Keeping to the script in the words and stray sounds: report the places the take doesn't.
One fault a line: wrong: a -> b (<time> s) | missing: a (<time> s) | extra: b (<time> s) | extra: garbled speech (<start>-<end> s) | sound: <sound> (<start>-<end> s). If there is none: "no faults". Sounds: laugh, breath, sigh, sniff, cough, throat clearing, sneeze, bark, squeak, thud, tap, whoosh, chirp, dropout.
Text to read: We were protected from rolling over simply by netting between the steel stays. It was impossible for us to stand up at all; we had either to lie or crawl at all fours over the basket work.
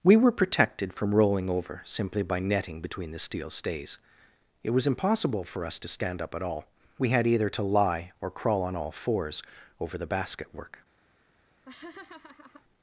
wrong: at -> on (8.6 s)
sound: laugh (11.7-12.6 s)